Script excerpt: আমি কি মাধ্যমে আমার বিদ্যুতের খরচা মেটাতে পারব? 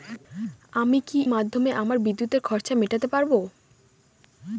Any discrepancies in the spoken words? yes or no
no